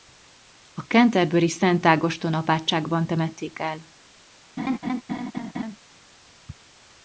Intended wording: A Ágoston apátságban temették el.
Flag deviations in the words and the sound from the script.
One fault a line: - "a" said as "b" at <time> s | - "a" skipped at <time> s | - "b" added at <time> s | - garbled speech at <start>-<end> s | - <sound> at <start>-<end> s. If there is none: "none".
- "Canterburyi Szent" added at 0.8 s
- laugh at 4.6-5.8 s